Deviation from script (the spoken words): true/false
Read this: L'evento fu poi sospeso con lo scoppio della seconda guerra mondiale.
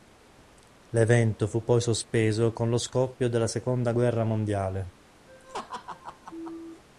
false